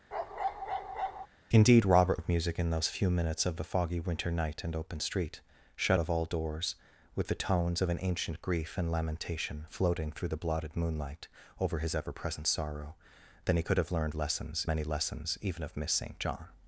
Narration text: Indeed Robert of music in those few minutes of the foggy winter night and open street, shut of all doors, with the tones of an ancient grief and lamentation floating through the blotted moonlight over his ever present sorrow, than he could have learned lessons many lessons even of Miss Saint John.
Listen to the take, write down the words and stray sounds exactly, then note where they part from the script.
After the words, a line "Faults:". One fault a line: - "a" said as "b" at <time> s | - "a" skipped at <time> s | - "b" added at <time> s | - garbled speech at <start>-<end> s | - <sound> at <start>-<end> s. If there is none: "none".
Indeed Robert of music in those few minutes of the foggy winter night and open street, shut of all doors, with the tones of an ancient grief and lamentation floating through the blotted moonlight over his ever present sorrow, than he could have learned lessons many lessons even of Miss Saint John.
Faults:
- bark at 0.1-1.3 s